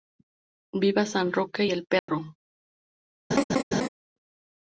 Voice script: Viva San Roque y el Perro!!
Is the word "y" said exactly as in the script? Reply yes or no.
no